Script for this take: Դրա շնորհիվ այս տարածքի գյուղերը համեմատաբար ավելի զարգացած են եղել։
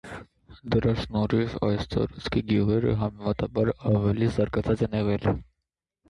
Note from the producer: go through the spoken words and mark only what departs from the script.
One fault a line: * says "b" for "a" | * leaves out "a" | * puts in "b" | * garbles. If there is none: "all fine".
all fine